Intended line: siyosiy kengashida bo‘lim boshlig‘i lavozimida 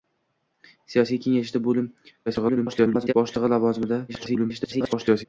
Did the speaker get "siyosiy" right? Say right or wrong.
right